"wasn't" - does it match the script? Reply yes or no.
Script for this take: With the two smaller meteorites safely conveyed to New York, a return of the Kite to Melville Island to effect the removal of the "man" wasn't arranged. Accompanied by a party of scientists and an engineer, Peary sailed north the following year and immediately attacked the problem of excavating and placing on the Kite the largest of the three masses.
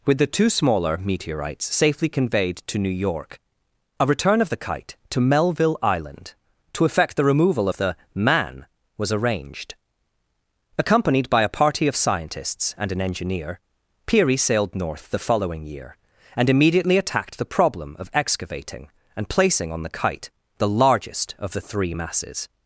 no